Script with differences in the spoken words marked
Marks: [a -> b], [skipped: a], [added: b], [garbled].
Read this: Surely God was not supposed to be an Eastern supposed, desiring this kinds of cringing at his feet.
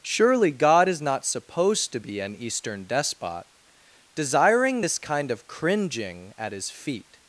Surely God [was -> is] not supposed to be an Eastern [supposed, -> despot] desiring this [kinds -> kind] of cringing at his feet.